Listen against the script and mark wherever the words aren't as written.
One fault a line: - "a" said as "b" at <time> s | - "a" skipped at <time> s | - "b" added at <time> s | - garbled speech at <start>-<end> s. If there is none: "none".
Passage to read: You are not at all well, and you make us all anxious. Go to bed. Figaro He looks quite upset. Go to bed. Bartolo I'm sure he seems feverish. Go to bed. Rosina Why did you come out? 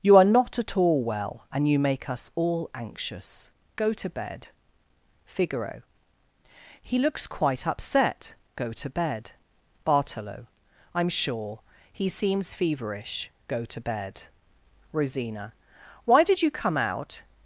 none